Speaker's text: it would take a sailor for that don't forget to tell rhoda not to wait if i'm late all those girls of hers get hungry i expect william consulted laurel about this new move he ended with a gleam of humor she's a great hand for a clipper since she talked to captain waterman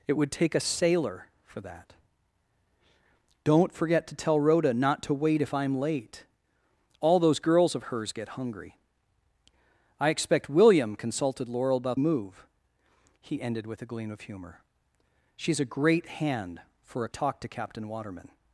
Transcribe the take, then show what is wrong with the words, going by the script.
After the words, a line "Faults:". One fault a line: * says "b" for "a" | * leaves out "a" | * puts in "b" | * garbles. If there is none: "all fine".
it would take a sailor for that don't forget to tell rhoda not to wait if i'm late all those girls of hers get hungry i expect william consulted laurel about move he ended with a gleam of humor she's a great hand for a talked to captain waterman
Faults:
* leaves out "this new"
* leaves out "clipper since she"